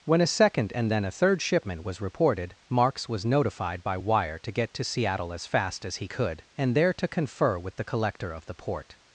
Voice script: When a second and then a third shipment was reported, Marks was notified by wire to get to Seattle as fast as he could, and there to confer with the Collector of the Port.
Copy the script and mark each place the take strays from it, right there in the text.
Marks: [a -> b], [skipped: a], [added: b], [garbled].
When a second and then a third shipment was reported, Marks was notified by wire to get to Seattle as fast as he could, and there to confer with the Collector of the Port.